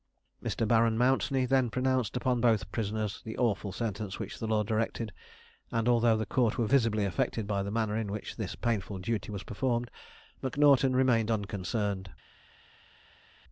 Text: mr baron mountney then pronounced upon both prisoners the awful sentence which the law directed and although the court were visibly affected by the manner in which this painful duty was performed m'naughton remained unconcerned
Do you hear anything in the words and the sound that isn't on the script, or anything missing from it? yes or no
no